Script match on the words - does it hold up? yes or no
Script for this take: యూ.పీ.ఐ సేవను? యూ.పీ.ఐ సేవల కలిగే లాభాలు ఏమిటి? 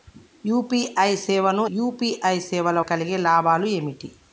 yes